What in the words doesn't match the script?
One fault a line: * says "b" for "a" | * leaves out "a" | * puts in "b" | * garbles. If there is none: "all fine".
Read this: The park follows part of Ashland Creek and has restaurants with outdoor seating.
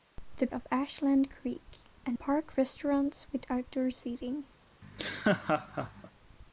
* leaves out "park follows part"
* says "park" for "has"